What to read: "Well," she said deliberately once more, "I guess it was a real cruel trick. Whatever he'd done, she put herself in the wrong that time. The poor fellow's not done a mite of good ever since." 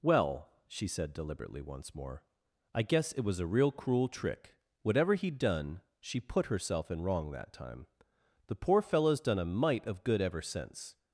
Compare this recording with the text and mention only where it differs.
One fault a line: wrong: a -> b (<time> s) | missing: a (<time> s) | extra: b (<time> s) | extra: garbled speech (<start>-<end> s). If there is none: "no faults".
missing: the (7.0 s)
missing: not (9.2 s)